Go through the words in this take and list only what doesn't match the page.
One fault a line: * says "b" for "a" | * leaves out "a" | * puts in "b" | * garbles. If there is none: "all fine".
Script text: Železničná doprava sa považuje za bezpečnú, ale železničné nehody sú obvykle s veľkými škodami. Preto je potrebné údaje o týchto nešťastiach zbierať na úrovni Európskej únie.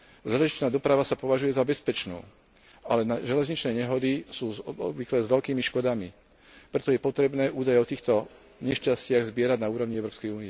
all fine